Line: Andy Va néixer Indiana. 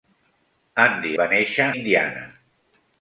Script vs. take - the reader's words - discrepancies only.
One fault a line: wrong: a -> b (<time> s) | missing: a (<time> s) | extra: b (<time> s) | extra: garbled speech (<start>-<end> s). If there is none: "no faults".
no faults